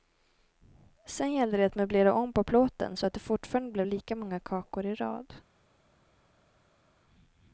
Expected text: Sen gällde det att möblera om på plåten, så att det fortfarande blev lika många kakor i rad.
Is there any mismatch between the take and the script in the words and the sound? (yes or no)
no